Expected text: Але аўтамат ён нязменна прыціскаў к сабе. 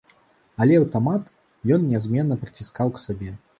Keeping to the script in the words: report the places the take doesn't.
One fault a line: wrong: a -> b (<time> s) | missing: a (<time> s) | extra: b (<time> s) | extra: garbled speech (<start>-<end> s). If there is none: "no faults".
no faults